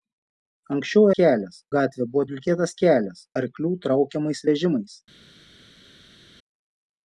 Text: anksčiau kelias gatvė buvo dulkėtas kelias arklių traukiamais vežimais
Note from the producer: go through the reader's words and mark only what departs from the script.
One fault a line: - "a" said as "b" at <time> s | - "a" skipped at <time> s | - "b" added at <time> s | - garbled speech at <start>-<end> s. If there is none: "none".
none